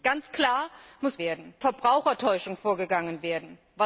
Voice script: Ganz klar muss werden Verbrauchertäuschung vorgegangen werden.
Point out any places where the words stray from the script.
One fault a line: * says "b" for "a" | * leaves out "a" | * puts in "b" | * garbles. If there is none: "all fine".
all fine